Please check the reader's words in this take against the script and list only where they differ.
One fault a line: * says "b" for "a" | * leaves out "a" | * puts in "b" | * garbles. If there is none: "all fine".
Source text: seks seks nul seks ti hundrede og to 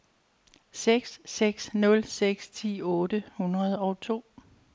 * puts in "otte"